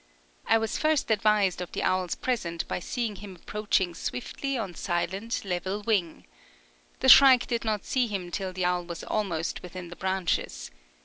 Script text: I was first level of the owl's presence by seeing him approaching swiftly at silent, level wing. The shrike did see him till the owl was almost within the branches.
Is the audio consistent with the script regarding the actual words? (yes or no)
no